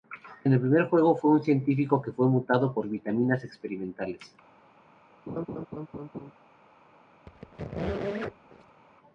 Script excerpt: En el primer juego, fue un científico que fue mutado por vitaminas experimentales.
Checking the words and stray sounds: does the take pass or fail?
fail